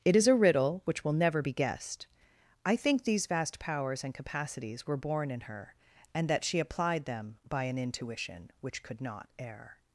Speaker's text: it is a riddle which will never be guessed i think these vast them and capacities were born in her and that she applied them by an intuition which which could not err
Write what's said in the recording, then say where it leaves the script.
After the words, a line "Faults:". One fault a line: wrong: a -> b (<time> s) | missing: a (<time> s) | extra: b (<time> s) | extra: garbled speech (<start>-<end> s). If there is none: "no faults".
it is a riddle which will never be guessed i think these vast powers and capacities were born in her and that she applied them by an intuition which could not err
Faults:
wrong: them -> powers (3.6 s)
missing: which (8.8 s)